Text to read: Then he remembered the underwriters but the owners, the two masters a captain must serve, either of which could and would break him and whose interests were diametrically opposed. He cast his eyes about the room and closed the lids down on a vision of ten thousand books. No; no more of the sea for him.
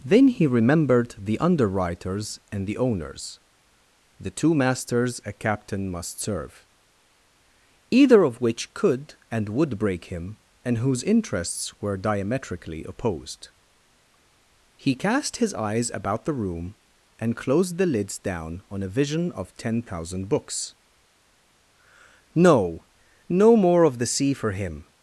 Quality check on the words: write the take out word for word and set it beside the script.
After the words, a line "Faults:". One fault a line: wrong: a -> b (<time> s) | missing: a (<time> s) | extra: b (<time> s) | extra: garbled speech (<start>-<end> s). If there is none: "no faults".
Then he remembered the underwriters and the owners, the two masters a captain must serve, either of which could and would break him and whose interests were diametrically opposed. He cast his eyes about the room and closed the lids down on a vision of ten thousand books. No; no more of the sea for him.
Faults:
wrong: but -> and (2.5 s)